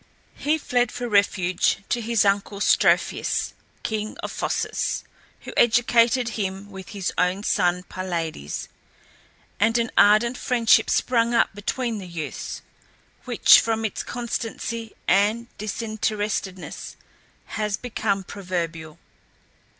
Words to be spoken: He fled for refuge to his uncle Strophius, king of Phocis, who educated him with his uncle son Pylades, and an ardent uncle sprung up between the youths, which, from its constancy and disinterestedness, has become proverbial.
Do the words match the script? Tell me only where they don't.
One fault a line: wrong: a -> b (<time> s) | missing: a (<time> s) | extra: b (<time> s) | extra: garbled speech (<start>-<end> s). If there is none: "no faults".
wrong: uncle -> own (7.2 s)
wrong: uncle -> friendship (10.4 s)